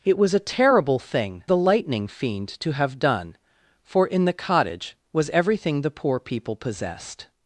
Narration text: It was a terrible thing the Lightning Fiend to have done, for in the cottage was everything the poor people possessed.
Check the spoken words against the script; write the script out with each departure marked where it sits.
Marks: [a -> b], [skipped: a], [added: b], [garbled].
It was a terrible thing the Lightning Fiend to have done, for in the cottage was everything the poor people possessed.